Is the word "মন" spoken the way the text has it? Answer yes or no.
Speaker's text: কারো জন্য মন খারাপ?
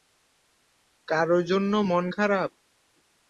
yes